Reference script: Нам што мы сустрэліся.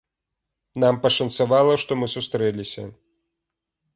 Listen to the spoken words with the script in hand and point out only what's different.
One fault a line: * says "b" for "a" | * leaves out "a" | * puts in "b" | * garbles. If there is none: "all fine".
* puts in "пашанцавала"